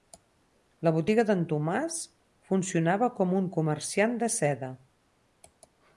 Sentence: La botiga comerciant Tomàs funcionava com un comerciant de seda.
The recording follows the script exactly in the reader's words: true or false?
false